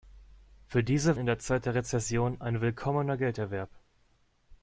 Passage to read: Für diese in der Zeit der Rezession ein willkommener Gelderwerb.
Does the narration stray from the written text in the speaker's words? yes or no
no